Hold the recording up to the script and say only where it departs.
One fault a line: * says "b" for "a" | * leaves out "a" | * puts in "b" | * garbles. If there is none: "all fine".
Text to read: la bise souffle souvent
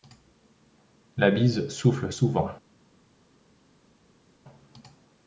all fine